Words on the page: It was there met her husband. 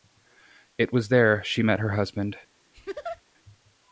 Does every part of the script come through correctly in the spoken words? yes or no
no